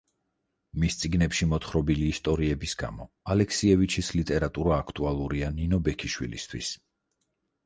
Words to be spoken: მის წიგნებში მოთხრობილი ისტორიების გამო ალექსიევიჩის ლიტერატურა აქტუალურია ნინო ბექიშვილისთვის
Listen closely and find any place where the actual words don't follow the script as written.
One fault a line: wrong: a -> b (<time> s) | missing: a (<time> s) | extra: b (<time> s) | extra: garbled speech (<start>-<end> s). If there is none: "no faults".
no faults